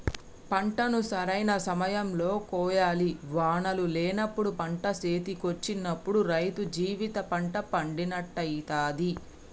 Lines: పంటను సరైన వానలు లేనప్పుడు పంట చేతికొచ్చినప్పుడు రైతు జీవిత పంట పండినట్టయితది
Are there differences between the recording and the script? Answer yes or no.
yes